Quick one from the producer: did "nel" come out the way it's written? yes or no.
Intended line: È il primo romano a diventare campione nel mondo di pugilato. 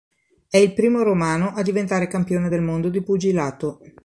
no